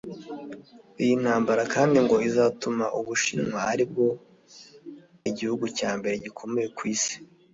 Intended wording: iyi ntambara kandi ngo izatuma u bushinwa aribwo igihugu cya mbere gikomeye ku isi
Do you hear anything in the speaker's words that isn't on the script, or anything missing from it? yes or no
no